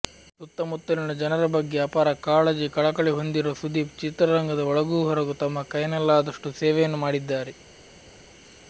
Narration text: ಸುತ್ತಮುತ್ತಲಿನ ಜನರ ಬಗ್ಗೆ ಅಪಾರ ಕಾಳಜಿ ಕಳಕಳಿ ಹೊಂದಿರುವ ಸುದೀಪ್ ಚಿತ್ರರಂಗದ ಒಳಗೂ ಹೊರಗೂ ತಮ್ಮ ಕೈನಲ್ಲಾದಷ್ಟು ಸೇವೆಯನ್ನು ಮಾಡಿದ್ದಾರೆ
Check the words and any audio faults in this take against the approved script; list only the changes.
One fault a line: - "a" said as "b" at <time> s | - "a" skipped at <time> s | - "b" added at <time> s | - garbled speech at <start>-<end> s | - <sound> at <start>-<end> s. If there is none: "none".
none